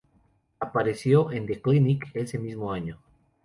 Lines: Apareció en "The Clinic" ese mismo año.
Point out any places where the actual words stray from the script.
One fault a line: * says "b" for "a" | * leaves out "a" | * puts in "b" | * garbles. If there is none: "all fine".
all fine